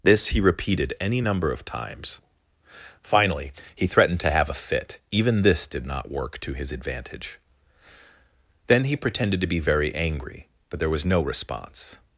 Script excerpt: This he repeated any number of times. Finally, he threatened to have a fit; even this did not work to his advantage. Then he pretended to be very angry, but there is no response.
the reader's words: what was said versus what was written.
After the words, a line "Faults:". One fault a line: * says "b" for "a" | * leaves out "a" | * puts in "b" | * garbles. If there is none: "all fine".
This he repeated any number of times. Finally, he threatened to have a fit; even this did not work to his advantage. Then he pretended to be very angry, but there was no response.
Faults:
* says "was" for "is"